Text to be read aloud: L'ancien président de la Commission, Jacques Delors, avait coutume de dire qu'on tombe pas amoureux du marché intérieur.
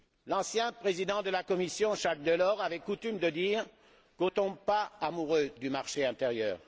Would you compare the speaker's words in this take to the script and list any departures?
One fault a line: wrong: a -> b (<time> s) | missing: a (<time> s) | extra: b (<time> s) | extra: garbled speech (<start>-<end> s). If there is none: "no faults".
no faults